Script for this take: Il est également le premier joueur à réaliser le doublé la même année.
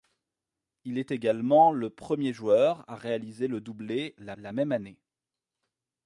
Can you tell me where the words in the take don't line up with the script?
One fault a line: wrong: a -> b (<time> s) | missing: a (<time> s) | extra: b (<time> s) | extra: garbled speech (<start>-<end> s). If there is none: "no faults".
extra: la (4.3 s)